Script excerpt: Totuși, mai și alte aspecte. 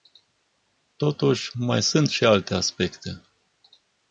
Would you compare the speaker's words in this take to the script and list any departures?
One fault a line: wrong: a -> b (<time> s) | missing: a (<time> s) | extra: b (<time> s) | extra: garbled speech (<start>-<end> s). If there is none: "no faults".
extra: sunt (1.8 s)